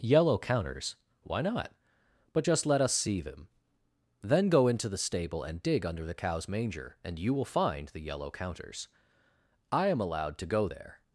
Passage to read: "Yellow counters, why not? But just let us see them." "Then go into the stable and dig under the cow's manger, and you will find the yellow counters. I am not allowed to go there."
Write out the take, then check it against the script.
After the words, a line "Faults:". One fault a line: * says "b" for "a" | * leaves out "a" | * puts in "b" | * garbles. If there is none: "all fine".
"Yellow counters, why not? But just let us see them." "Then go into the stable and dig under the cow's manger, and you will find the yellow counters. I am allowed to go there."
Faults:
* leaves out "not"